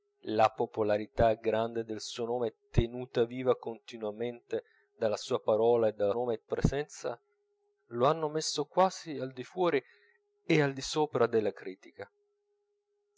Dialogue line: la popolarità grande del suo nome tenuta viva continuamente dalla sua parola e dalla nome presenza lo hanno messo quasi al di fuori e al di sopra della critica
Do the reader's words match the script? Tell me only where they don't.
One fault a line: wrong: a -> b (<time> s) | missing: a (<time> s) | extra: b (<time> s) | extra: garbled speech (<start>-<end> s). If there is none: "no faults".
no faults